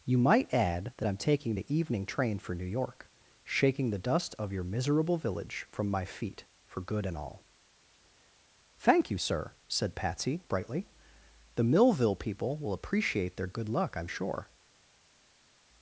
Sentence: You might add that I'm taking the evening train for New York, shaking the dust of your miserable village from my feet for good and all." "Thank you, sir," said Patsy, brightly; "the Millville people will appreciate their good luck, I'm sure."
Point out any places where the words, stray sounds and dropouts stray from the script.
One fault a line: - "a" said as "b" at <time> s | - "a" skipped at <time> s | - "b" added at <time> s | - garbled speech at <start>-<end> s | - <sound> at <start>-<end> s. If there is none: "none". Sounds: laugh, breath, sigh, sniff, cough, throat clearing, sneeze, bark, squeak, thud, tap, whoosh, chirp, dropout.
none